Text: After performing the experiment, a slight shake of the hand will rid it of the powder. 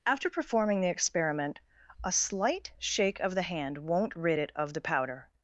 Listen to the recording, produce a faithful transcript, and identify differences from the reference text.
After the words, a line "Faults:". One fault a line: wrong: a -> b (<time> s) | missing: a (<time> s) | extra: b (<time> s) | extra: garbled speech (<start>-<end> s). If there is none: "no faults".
After performing the experiment, a slight shake of the hand won't rid it of the powder.
Faults:
wrong: will -> won't (3.8 s)